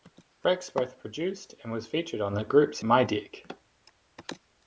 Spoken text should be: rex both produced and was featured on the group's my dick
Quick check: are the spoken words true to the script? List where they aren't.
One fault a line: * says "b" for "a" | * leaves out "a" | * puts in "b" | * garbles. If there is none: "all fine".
all fine